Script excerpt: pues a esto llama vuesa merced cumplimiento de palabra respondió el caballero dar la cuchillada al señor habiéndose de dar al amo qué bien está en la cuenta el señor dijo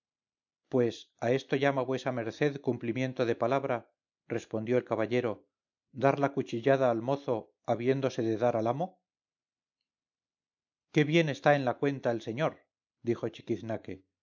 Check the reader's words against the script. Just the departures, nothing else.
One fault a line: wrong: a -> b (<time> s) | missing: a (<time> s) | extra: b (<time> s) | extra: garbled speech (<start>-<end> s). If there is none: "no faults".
wrong: señor -> mozo (7.0 s)